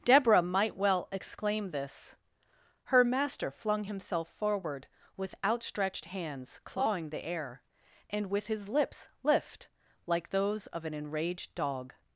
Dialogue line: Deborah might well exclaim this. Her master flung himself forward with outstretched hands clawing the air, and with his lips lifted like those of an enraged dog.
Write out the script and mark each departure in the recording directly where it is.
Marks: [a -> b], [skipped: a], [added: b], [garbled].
Deborah might well exclaim this. Her master flung himself forward with outstretched hands clawing the air, and with his lips [lifted -> lift] like those of an enraged dog.